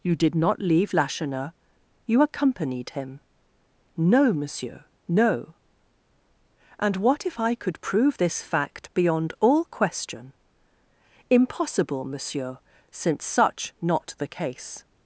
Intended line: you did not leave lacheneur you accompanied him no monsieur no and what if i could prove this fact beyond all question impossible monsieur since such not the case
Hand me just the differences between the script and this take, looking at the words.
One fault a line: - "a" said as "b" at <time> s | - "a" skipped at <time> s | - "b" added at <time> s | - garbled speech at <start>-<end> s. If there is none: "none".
none